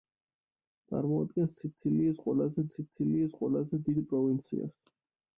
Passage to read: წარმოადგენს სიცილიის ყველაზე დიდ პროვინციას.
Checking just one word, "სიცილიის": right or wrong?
right